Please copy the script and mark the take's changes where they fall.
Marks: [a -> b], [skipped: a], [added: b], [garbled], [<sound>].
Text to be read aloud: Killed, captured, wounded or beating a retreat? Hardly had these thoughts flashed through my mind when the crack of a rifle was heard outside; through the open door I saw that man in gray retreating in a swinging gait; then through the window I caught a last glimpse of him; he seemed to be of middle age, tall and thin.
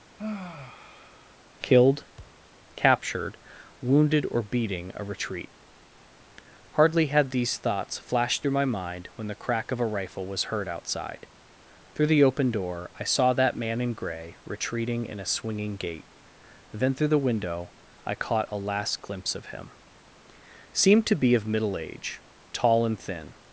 [sigh] Killed, [thud] captured, wounded or beating a retreat? Hardly had these thoughts flashed through my mind when the crack of a rifle was heard outside; through the open door I saw that man in gray retreating in a swinging gait; then through the window I caught a last glimpse of him; [skipped: he] seemed to be of middle age, tall and thin.